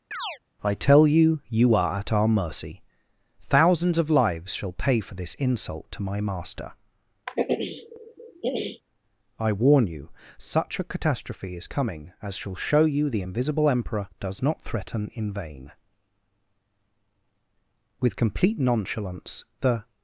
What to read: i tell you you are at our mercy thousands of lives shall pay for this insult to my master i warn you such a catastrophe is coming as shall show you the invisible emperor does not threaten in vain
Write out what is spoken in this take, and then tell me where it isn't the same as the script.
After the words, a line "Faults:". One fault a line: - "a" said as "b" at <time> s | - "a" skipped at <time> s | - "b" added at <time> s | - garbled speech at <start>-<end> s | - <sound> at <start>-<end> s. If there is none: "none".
i tell you you are at our mercy thousands of lives shall pay for this insult to my master i warn you such a catastrophe is coming as shall show you the invisible emperor does not threaten in vain with complete nonchalance the
Faults:
- chirp at 0.1-0.4 s
- throat clearing at 7.3-8.8 s
- "with complete nonchalance the" added at 18.0 s